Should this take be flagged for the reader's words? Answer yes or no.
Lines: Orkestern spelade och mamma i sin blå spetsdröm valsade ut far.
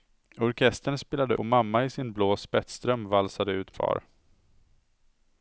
no